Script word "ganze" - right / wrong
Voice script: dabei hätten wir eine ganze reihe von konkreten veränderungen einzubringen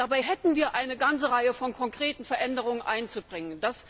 right